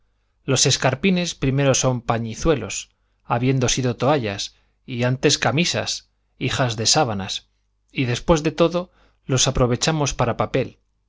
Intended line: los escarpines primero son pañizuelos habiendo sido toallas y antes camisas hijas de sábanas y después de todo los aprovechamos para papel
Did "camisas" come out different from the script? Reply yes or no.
no